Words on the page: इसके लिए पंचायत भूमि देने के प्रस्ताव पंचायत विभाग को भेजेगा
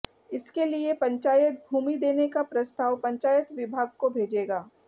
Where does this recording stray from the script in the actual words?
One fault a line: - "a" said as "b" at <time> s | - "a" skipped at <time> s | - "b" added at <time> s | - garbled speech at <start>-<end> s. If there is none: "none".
- "के" said as "का" at 2.3 s